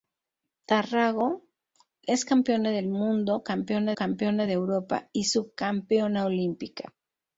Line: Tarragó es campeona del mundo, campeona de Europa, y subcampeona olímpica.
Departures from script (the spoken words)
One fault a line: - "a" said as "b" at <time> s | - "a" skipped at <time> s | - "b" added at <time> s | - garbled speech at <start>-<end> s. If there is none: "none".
- "campeona" added at 3.9 s